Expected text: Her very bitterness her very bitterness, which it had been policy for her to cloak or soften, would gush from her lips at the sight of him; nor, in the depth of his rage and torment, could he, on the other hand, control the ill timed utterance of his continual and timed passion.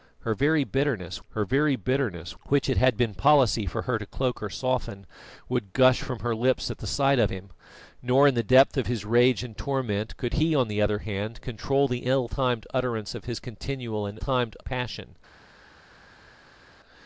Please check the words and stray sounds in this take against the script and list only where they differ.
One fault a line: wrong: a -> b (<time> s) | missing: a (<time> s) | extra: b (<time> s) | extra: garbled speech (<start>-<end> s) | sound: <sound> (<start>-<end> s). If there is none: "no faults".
no faults